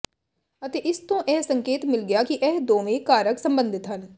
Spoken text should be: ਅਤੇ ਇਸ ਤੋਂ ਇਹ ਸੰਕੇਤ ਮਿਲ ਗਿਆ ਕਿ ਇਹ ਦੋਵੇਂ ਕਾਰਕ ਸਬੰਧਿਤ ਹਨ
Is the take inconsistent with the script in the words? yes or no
no